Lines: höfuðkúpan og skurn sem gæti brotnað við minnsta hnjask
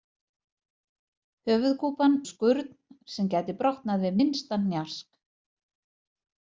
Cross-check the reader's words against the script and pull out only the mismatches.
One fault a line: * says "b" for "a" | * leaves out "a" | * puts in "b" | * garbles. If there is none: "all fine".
all fine